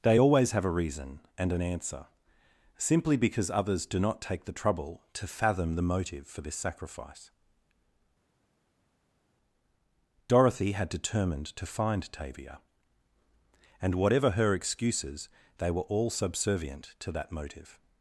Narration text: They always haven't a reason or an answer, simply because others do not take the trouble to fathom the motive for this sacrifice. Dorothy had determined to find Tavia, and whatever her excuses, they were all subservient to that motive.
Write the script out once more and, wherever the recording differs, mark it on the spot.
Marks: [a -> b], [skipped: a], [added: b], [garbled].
They always [haven't -> have] a reason [or -> and] an answer, simply because others do not take the trouble to fathom the motive for this sacrifice. Dorothy had determined to find Tavia, and whatever her excuses, they were all subservient to that motive.